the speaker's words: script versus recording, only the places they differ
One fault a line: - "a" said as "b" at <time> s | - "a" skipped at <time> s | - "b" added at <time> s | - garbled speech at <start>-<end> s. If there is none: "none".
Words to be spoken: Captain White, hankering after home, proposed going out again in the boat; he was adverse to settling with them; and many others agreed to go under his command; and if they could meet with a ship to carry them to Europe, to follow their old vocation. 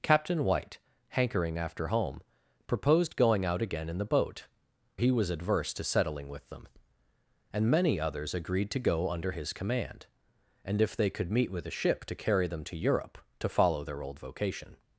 none